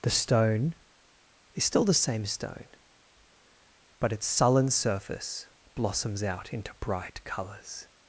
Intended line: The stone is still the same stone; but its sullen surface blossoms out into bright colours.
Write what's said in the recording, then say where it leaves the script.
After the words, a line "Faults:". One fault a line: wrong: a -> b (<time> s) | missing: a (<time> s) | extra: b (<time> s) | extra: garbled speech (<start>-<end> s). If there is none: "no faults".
The stone is still the same stone; but its sullen surface blossoms out into bright colours.
Faults:
no faults